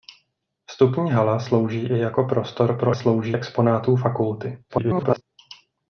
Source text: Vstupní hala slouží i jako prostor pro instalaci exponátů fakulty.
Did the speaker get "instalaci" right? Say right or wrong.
wrong